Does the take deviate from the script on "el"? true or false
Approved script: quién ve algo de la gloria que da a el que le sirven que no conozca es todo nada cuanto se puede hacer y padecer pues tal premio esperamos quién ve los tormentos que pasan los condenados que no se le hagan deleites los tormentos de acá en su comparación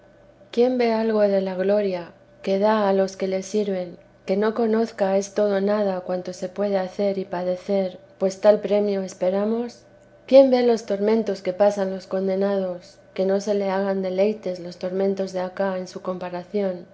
true